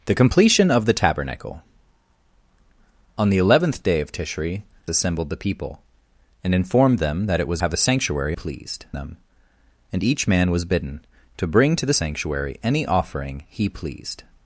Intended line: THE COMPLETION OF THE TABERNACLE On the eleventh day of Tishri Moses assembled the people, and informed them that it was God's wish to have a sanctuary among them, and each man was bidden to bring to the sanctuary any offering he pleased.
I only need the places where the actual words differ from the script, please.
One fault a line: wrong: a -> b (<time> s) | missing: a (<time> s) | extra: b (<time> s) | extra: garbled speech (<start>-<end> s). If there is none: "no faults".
missing: Moses (4.6 s)
missing: God's wish to (7.6 s)
wrong: among -> pleased (8.3 s)